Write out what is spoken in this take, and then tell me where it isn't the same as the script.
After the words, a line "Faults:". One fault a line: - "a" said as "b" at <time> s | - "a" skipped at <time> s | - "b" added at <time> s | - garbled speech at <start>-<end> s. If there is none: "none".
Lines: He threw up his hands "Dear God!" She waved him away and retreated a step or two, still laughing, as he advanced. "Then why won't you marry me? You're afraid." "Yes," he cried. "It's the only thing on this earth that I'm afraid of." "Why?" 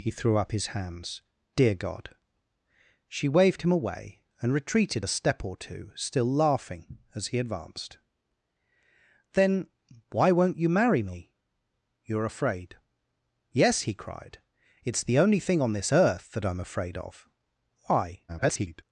He threw up his hands "Dear God!" She waved him away and retreated a step or two, still laughing, as he advanced. "Then why won't you marry me? You're afraid." "Yes," he cried. "It's the only thing on this earth that I'm afraid of." "Why?" [garbled]
Faults:
- garbled speech at 18.3-18.8 s